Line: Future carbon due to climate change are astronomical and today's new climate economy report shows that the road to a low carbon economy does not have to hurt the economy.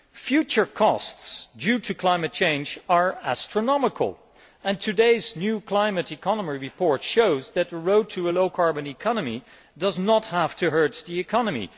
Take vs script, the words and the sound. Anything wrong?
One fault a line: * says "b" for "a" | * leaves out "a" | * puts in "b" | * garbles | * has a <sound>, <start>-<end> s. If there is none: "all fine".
* says "costs" for "carbon"